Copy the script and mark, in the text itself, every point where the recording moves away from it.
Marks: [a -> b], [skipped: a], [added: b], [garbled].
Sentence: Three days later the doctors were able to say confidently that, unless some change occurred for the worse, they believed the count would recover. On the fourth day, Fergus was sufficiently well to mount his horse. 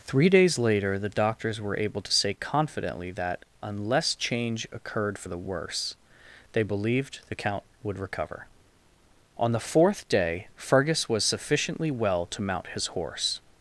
Three days later the doctors were able to say confidently that, unless [skipped: some] change occurred for the worse, they believed the count would recover. On the fourth day, Fergus was sufficiently well to mount his horse.